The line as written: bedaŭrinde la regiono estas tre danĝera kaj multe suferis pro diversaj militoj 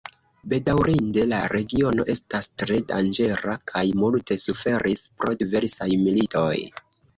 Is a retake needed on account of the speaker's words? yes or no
no